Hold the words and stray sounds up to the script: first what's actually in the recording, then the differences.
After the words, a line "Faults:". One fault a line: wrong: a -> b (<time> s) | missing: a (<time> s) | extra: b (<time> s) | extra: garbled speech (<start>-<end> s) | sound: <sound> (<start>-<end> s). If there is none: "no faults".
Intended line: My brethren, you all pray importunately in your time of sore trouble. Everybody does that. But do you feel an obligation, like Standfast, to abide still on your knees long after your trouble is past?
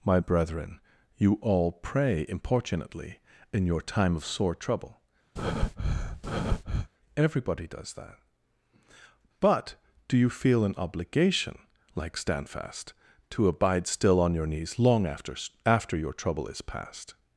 My brethren, you all pray importunately in your time of sore trouble. Everybody does that. But do you feel an obligation, like Standfast, to abide still on your knees long after after your trouble is past?
Faults:
sound: breath (5.4-6.9 s)
extra: after (15.6 s)